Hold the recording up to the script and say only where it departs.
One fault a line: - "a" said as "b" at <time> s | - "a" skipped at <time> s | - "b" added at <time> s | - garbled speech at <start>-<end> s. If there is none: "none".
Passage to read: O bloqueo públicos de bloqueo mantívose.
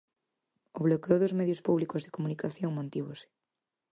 - "dos medios" added at 1.2 s
- "bloqueo" said as "comunicación" at 2.2 s